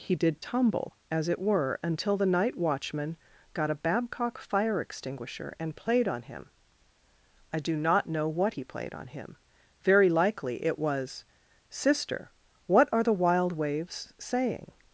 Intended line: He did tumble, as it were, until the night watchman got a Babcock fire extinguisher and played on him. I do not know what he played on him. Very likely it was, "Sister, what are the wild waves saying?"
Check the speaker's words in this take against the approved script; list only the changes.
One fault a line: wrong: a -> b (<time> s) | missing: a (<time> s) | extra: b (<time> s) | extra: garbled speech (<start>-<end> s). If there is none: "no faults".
no faults